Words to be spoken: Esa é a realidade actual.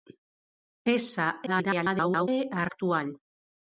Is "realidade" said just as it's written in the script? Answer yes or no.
no